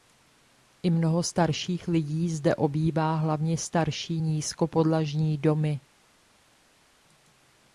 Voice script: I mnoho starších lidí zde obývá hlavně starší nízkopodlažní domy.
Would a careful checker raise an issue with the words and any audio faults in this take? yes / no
no